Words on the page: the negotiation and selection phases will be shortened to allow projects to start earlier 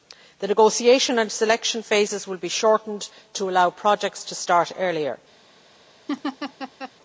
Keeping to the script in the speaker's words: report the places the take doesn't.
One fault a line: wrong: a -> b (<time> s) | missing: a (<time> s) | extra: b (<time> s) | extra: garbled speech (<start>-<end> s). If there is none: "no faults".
no faults